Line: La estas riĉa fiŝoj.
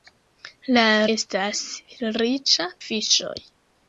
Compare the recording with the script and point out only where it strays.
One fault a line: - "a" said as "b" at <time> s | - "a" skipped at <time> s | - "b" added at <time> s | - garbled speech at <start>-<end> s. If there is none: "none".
none